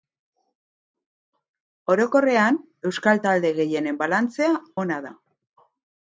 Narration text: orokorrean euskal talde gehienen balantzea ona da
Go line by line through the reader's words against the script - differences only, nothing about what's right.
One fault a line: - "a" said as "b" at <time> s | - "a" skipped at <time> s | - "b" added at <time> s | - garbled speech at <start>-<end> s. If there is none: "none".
none